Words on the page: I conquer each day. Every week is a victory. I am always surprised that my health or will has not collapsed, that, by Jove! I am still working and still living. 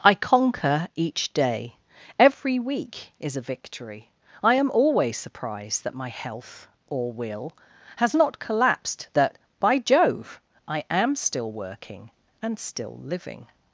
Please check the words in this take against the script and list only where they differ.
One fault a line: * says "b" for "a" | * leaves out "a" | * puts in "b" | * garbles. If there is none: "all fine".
all fine